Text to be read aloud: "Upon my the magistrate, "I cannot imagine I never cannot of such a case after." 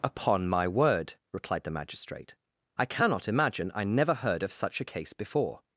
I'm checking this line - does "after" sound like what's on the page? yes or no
no